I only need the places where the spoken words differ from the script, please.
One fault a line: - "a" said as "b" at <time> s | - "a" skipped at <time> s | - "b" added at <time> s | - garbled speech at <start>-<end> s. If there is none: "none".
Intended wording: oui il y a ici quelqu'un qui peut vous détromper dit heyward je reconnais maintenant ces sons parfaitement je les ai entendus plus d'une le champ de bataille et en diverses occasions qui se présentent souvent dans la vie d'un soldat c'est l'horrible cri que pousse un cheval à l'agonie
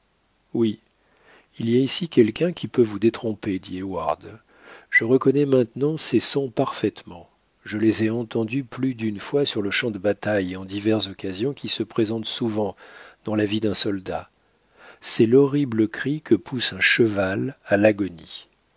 - "fois sur" added at 9.2 s